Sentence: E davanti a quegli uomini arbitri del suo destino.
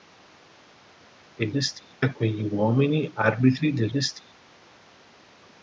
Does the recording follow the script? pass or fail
fail